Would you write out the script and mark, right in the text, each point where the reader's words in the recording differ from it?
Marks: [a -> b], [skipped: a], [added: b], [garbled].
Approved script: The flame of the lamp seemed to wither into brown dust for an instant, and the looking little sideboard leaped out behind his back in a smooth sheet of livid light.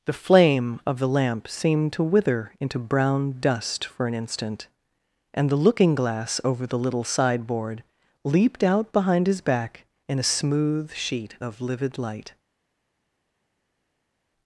The flame of the lamp seemed to wither into brown dust for an instant, and the looking [added: glass over the] little sideboard leaped out behind his back in a smooth sheet of livid light.